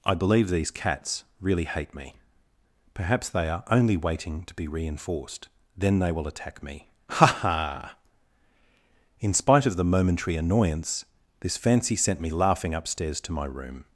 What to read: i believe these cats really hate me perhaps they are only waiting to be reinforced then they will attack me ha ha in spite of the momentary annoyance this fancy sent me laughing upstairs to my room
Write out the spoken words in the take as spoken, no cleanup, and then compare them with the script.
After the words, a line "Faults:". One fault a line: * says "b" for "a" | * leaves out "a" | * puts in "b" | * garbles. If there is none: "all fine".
i believe these cats really hate me perhaps they are only waiting to be reinforced then they will attack me ha ha in spite of the momentary annoyance this fancy sent me laughing upstairs to my room
Faults:
all fine